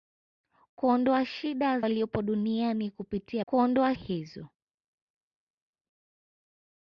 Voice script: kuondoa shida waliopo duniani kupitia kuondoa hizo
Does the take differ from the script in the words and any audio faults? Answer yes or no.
no